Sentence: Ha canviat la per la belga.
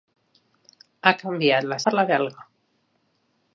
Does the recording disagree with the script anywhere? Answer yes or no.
no